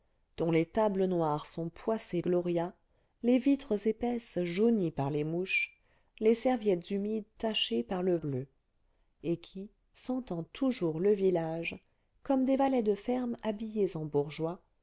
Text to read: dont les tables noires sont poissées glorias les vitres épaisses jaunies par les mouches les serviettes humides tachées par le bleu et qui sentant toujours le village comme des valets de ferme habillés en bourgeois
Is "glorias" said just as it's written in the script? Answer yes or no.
yes